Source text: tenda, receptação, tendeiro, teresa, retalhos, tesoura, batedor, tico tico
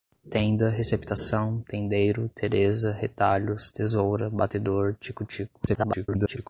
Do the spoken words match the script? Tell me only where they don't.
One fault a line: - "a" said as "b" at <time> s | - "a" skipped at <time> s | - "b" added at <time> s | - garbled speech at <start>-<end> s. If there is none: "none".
- garbled speech at 5.7-6.5 s